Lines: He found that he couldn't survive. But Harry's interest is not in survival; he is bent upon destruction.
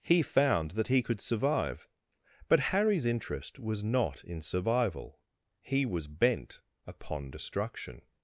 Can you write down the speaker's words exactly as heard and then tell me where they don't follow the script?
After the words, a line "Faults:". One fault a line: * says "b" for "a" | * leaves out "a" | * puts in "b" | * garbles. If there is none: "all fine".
He found that he could survive. But Harry's interest was not in survival; he was bent upon destruction.
Faults:
* says "could" for "couldn't"
* says "was" for "is"
* says "was" for "is"